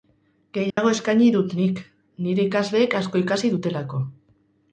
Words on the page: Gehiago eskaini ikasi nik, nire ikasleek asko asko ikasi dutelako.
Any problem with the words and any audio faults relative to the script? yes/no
yes